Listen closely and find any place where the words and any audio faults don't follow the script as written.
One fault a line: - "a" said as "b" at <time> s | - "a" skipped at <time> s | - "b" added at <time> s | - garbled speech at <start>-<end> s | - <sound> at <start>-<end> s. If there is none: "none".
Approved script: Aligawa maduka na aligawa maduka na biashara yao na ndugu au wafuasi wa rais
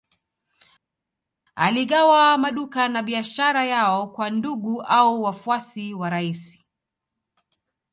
- "aligawa maduka na" skipped at 3.0 s
- "na" said as "kwa" at 4.1 s